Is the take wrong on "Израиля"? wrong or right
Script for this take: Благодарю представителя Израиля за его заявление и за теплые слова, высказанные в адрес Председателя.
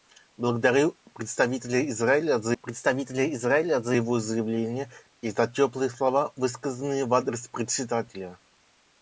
right